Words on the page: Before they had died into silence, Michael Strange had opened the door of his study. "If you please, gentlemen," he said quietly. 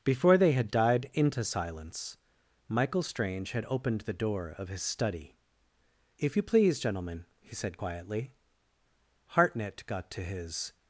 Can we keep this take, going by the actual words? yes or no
no